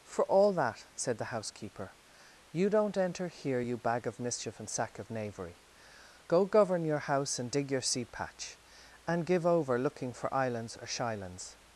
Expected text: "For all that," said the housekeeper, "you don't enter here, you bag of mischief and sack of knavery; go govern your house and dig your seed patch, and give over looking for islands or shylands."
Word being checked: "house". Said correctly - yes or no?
yes